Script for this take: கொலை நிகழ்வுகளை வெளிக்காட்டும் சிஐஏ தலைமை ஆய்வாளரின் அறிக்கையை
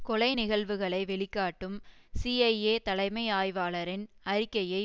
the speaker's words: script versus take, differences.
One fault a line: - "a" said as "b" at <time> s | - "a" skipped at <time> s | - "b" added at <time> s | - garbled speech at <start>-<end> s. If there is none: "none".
none